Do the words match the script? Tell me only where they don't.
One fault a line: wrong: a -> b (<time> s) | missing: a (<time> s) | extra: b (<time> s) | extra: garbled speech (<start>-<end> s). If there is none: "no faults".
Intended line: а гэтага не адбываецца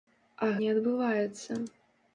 missing: гэтага (0.5 s)